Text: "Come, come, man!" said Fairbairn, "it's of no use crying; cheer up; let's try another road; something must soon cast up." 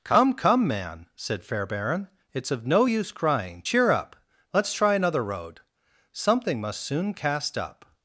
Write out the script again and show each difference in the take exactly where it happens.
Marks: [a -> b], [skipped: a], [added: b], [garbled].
"Come, come, man!" said Fairbairn, "it's of no use crying; cheer up; let's try another road; something must soon cast up."